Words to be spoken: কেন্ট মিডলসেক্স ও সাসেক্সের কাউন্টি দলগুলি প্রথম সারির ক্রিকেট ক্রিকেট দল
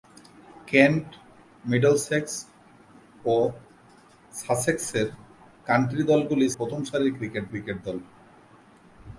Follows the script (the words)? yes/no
yes